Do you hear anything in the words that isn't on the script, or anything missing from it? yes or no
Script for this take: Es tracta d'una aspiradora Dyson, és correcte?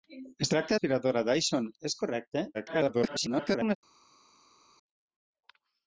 yes